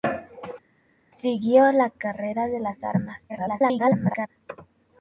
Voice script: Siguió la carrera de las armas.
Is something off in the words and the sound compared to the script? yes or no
yes